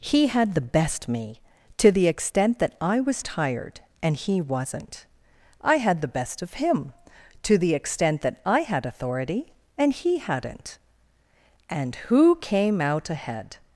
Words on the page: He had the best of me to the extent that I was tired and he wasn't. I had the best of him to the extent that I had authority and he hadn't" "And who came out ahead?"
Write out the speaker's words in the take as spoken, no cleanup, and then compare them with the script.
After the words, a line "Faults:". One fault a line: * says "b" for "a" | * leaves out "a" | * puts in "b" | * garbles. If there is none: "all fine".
He had the best me to the extent that I was tired and he wasn't. I had the best of him to the extent that I had authority and he hadn't" "And who came out ahead?"
Faults:
* leaves out "of"